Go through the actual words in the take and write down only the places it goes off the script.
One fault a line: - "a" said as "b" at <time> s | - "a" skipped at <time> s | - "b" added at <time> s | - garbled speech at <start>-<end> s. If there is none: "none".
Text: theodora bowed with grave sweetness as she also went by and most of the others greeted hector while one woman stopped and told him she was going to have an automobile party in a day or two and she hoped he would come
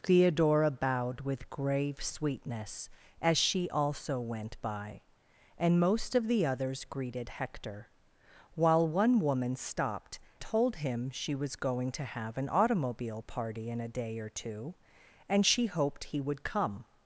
- "and" skipped at 10.2 s